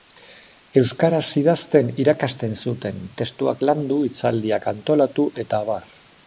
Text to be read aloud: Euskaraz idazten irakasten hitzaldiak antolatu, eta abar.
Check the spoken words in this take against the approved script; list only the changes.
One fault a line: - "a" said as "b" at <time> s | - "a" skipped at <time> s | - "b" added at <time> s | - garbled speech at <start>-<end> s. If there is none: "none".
- "zuten testuak landu" added at 2.6 s